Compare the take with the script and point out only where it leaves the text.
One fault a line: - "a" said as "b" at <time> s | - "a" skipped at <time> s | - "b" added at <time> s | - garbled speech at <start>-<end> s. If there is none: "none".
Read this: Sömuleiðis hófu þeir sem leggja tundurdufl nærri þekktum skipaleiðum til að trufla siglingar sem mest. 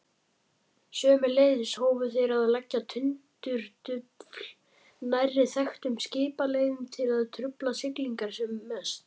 - "sem" said as "að" at 2.3 s